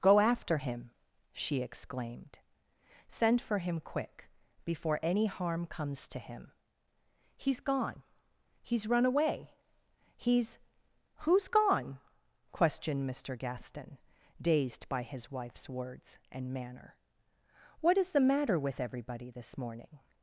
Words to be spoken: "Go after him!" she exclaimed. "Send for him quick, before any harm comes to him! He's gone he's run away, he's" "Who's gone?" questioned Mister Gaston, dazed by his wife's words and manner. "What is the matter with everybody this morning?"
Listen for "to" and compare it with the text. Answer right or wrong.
right